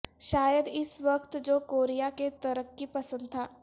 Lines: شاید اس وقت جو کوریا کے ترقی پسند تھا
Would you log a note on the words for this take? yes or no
no